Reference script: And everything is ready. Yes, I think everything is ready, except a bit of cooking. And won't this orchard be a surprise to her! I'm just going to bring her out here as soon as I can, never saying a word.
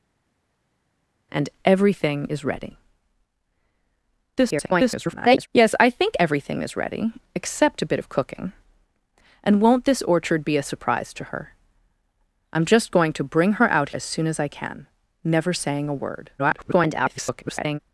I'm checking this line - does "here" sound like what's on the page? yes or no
no